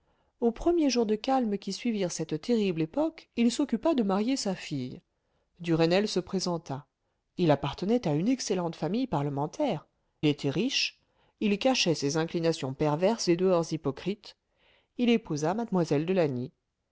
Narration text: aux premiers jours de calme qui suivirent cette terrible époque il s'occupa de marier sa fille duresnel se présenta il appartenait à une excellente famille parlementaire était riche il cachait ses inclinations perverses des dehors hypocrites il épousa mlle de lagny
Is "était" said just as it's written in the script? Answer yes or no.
yes